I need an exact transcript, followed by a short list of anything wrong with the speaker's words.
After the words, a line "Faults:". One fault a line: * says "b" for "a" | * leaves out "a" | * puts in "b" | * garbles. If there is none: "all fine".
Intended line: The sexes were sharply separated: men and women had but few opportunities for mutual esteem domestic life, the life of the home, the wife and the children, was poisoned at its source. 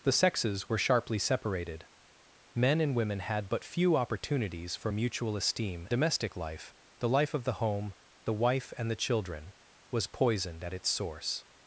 The sexes were sharply separated: men and women had but few opportunities for mutual esteem domestic life, the life of the home, the wife and the children, was poisoned at its source.
Faults:
all fine